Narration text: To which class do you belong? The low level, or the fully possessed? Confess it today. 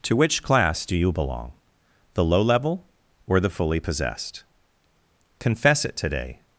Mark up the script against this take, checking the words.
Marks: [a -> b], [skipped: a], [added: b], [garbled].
To which class do you belong? The low level, or the fully possessed? Confess it today.